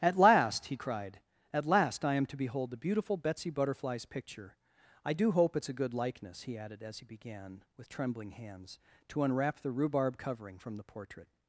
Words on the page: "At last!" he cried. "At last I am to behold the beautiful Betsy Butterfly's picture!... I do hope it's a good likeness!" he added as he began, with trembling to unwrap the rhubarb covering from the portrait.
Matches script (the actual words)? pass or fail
fail